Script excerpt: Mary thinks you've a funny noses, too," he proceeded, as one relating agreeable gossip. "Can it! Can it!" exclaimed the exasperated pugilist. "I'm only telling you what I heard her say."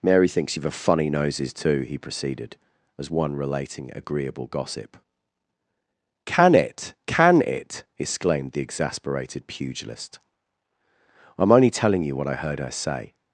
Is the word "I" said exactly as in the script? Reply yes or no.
yes